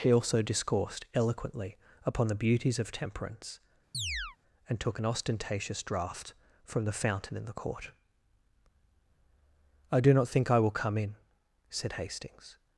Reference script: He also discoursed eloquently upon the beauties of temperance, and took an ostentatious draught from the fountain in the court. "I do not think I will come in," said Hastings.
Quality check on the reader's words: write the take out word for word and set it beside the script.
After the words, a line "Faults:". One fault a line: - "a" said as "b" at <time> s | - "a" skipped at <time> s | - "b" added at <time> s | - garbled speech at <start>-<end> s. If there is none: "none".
He also discoursed eloquently upon the beauties of temperance, and took an ostentatious draught from the fountain in the court. "I do not think I will come in," said Hastings.
Faults:
none